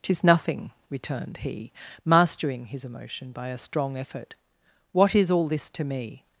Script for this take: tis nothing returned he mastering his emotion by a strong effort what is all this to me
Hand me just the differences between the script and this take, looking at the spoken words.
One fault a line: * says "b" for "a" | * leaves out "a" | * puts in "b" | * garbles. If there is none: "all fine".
all fine